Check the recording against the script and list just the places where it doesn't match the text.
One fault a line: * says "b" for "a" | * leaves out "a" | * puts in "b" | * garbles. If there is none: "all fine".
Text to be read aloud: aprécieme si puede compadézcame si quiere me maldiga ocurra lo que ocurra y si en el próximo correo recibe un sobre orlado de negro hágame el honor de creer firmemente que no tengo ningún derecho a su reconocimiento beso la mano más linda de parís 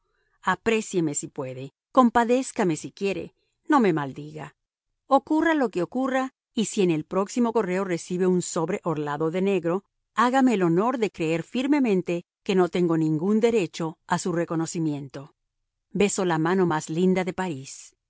* puts in "no"